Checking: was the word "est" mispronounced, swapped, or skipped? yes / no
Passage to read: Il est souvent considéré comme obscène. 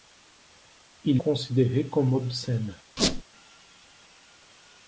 yes